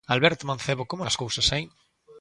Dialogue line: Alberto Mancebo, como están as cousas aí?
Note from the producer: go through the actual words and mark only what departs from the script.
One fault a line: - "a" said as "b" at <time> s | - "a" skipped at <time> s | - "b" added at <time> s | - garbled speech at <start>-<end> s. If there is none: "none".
- "están" skipped at 1.0 s